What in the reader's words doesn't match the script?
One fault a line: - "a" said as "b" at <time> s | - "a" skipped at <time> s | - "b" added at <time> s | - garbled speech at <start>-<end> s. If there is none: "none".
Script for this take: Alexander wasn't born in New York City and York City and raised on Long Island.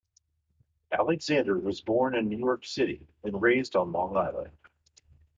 - "wasn't" said as "was" at 1.6 s
- "York City and" skipped at 3.4 s